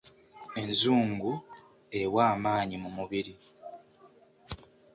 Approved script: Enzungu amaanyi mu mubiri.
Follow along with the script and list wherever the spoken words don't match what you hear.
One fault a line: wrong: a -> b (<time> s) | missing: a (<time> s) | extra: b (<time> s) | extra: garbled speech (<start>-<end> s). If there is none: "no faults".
extra: ewa (2.0 s)